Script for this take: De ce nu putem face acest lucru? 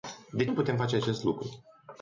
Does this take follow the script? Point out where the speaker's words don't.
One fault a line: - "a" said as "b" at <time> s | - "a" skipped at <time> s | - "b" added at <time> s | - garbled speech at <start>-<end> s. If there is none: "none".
- "ce" skipped at 0.5 s